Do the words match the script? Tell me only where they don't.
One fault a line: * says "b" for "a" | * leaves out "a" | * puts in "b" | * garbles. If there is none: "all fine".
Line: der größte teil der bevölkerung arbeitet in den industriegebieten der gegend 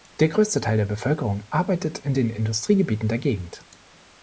all fine